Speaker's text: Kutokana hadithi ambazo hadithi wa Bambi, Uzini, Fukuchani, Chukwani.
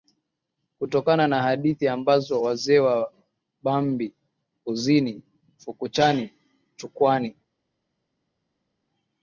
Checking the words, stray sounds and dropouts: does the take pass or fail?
fail